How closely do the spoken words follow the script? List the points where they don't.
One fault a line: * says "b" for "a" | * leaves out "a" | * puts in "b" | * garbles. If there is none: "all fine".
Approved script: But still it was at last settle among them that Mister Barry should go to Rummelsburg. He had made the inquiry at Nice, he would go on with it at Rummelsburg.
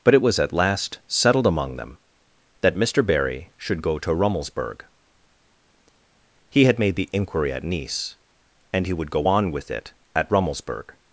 * leaves out "still"
* says "settled" for "settle"
* puts in "and"